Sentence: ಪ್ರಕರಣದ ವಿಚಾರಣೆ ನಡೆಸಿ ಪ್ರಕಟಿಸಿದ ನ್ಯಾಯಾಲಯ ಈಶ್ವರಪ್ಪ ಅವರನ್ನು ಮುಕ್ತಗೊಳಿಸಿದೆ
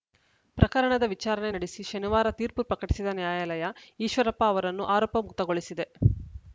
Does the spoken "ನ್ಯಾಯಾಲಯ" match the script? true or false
true